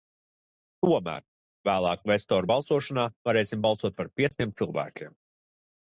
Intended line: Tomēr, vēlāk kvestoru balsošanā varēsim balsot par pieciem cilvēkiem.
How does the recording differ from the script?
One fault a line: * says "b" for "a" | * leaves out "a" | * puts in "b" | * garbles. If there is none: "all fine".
all fine